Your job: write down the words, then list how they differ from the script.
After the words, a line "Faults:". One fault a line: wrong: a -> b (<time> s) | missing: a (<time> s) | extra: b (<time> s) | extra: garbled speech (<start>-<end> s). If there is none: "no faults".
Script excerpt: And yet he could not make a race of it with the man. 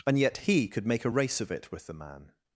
And yet he could make a race of it with the man.
Faults:
missing: not (0.9 s)